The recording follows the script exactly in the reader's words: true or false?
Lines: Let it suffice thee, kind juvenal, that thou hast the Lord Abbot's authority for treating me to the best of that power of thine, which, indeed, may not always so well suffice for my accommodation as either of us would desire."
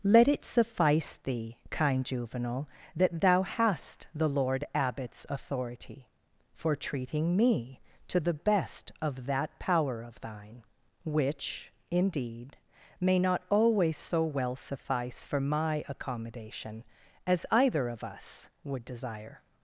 true